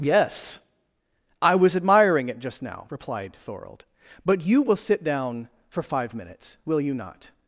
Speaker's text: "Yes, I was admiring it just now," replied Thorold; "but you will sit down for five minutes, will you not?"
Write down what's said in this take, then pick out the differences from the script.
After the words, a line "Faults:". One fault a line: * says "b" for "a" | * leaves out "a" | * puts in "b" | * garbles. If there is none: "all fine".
"Yes, I was admiring it just now," replied Thorold; "but you will sit down for five minutes, will you not?"
Faults:
all fine